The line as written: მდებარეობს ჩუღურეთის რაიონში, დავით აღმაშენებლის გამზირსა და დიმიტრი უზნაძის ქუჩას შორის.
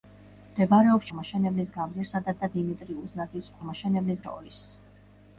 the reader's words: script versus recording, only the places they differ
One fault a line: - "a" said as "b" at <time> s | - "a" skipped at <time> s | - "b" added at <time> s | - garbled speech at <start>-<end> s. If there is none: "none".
- "ჩუღურეთის რაიონში დავით" skipped at 1.1 s
- "და" added at 2.4 s
- "ქუჩას" said as "აღმაშენებლის" at 3.6 s